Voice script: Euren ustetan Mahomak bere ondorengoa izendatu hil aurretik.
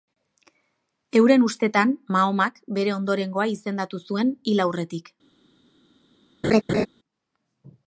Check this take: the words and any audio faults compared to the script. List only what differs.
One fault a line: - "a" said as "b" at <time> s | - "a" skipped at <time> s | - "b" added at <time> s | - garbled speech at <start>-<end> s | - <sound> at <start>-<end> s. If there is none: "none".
- "zuen" added at 4.1 s
- laugh at 6.4-6.9 s